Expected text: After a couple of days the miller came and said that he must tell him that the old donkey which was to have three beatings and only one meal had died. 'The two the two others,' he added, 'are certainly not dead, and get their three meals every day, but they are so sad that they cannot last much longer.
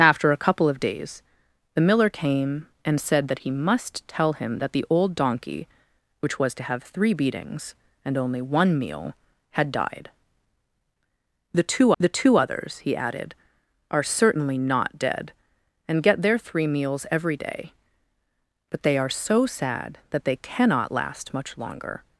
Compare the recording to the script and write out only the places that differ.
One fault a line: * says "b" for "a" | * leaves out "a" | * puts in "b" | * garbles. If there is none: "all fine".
all fine